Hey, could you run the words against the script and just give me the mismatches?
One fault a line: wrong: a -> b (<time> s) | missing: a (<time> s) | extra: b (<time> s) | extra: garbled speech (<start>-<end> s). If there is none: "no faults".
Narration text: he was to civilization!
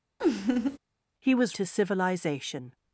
no faults